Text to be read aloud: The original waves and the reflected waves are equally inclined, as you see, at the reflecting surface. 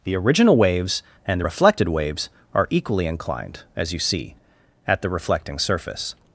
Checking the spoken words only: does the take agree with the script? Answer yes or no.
yes